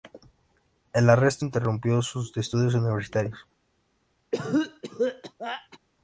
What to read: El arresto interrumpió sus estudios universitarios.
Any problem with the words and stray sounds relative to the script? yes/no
yes